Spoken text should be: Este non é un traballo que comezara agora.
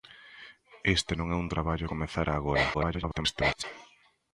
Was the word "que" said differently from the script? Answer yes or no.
yes